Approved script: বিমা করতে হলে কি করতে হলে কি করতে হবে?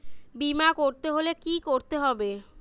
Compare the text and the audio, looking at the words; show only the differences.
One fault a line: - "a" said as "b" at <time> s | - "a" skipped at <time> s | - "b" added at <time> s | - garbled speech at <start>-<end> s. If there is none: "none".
- "হলে কি করতে" skipped at 2.0 s